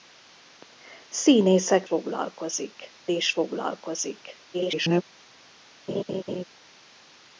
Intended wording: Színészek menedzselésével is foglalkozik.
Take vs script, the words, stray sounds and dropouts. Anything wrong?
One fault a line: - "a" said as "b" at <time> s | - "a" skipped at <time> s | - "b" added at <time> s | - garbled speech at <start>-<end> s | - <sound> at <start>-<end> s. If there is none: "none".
- "menedzselésével" said as "foglalkozik" at 1.8 s
- garbled speech at 4.5-5.0 s
- laugh at 5.9-6.4 s